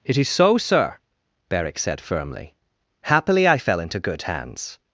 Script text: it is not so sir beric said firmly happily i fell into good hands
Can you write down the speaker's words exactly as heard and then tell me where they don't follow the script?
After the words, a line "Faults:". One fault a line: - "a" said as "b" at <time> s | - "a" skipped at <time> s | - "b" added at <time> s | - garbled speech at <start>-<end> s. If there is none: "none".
it is so sir beric said firmly happily i fell into good hands
Faults:
- "not" skipped at 0.3 s